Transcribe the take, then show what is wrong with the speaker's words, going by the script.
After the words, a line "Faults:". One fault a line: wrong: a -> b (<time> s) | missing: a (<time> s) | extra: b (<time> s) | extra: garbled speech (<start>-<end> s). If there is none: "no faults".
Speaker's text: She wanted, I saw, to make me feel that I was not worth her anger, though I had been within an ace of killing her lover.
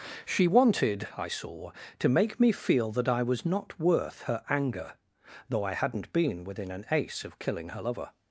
She wanted, I saw, to make me feel that I was not worth her anger, though I hadn't been within an ace of killing her lover.
Faults:
wrong: had -> hadn't (5.7 s)